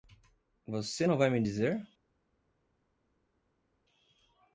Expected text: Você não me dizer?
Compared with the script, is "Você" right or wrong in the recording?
right